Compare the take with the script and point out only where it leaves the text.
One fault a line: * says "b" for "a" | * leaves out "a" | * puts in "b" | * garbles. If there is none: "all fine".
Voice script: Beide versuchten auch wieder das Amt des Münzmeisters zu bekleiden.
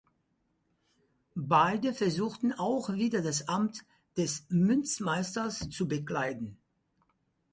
all fine